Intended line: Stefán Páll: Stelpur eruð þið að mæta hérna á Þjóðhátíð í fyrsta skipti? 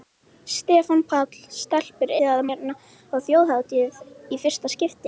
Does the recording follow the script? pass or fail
fail